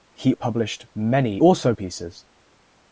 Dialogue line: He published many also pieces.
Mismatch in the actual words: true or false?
false